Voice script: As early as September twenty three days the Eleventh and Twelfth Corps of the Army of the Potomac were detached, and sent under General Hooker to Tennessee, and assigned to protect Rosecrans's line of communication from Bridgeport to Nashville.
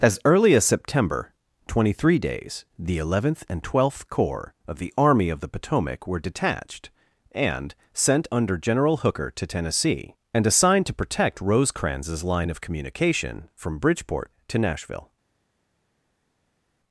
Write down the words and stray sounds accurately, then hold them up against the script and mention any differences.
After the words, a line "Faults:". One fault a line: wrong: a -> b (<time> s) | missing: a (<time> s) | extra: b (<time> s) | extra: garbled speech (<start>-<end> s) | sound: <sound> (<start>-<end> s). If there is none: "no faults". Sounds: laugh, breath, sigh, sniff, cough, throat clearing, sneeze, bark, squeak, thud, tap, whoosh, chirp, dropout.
As early as September twenty three days the Eleventh and Twelfth Corps of the Army of the Potomac were detached, and sent under General Hooker to Tennessee, and assigned to protect Rosecrans's line of communication from Bridgeport to Nashville.
Faults:
no faults